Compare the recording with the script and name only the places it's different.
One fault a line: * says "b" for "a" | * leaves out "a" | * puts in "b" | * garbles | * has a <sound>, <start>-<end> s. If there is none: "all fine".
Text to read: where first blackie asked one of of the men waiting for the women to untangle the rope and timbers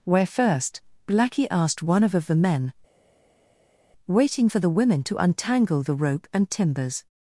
all fine